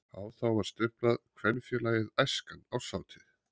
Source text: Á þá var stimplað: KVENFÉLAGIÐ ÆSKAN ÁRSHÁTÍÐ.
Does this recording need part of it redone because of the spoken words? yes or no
no